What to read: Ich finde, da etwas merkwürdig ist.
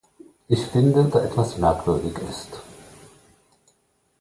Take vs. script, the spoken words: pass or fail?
pass